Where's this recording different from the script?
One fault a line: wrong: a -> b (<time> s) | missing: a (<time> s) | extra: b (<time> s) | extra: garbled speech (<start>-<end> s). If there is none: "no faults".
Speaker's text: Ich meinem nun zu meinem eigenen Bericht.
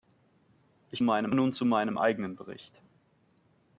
no faults